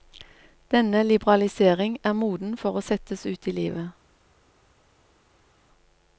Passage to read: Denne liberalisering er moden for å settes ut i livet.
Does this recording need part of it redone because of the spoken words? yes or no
no